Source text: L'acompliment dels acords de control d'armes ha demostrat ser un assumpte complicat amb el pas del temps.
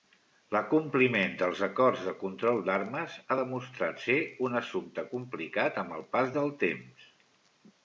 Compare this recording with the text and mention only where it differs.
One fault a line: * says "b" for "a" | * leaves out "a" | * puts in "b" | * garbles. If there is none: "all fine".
all fine